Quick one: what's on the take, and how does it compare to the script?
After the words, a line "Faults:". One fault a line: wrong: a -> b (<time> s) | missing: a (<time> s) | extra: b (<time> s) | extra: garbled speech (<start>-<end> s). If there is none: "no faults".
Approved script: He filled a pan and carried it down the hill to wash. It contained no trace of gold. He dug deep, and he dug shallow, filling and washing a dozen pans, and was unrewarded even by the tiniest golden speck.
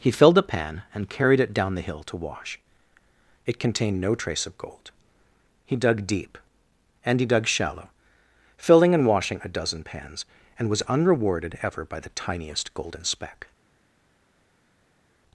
He filled a pan and carried it down the hill to wash. It contained no trace of gold. He dug deep, and he dug shallow, filling and washing a dozen pans, and was unrewarded ever by the tiniest golden speck.
Faults:
wrong: even -> ever (11.6 s)